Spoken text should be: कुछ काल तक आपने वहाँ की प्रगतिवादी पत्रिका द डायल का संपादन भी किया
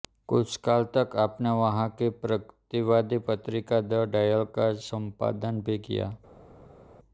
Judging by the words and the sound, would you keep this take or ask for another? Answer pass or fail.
pass